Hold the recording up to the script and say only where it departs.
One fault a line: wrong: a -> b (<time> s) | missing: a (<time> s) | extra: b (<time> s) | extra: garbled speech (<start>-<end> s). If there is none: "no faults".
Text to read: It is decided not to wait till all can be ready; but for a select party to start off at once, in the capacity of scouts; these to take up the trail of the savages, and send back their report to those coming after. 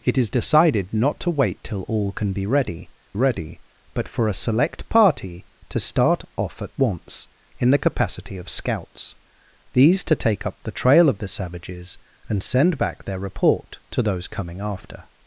extra: ready (3.1 s)